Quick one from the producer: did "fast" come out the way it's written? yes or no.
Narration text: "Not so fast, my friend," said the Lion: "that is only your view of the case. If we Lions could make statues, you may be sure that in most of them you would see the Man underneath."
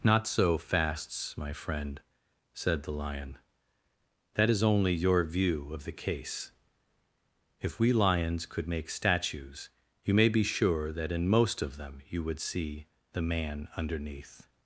no